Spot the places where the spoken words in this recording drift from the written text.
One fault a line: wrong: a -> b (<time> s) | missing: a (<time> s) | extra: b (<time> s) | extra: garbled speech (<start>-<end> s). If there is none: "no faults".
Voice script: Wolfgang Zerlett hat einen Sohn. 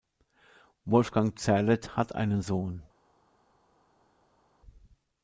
no faults